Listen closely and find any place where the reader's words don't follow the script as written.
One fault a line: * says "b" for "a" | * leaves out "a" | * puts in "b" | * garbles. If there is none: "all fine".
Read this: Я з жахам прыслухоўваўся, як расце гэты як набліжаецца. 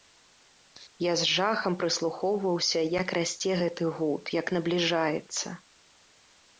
* puts in "гуд"